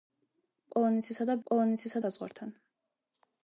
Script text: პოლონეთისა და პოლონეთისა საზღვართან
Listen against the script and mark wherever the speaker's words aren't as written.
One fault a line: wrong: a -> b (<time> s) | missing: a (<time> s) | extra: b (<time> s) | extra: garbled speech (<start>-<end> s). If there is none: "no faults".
no faults